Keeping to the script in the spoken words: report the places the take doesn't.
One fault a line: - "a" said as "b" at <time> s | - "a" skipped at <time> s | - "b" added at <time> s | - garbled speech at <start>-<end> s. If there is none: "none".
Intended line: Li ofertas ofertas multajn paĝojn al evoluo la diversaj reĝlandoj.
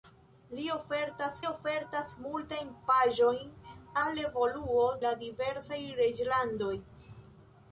none